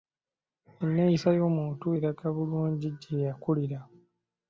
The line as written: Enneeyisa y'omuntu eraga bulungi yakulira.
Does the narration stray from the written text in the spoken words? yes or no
yes